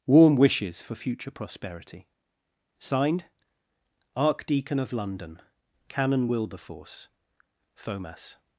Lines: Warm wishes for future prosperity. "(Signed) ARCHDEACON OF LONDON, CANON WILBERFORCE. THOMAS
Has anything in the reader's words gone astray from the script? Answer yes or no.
no